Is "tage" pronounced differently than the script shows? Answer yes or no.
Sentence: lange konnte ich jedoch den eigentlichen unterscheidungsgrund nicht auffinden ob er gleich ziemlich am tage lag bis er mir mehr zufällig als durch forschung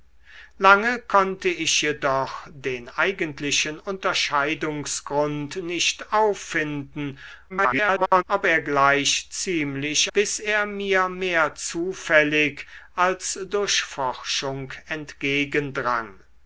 yes